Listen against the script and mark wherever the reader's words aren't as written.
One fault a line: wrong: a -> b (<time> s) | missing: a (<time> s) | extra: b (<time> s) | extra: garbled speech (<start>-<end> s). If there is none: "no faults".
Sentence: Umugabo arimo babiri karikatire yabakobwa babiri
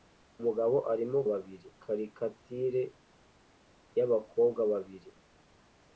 no faults